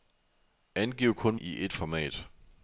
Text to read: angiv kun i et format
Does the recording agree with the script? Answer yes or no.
yes